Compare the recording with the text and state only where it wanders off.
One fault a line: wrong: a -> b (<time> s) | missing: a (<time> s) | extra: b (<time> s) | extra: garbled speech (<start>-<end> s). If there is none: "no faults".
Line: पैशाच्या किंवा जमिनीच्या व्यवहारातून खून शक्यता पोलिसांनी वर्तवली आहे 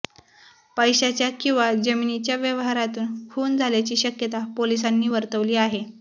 extra: झाल्याची (3.6 s)